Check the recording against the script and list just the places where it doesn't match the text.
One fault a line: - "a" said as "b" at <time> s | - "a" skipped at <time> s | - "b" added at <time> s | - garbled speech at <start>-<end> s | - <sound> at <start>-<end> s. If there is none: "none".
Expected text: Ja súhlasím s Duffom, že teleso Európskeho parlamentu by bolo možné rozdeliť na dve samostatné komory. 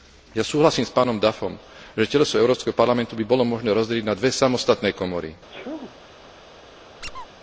- "pánom" added at 0.9 s
- sneeze at 5.5-6.0 s
- squeak at 7.0-7.3 s